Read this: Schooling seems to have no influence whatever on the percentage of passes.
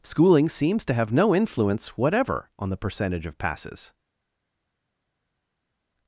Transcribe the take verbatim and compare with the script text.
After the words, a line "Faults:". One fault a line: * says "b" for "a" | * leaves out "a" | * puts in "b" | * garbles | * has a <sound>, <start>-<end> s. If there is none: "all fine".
Schooling seems to have no influence whatever on the percentage of passes.
Faults:
all fine